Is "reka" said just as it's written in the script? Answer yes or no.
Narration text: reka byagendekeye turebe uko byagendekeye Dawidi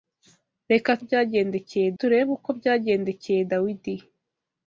yes